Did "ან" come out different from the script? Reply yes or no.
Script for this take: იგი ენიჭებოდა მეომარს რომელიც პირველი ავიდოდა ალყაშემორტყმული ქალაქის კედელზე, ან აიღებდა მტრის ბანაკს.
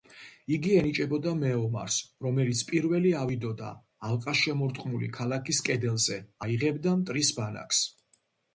yes